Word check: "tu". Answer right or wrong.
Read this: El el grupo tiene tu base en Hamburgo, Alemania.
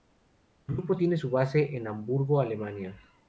wrong